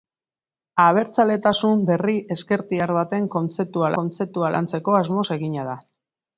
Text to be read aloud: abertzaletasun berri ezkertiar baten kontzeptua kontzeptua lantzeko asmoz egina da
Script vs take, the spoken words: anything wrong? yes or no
no